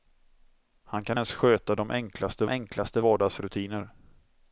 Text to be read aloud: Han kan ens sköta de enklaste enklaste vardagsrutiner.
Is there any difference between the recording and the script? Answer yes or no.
no